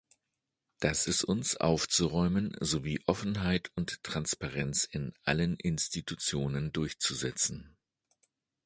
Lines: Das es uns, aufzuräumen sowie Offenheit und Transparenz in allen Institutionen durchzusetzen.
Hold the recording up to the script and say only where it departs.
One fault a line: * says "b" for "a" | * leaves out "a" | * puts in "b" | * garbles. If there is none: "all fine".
all fine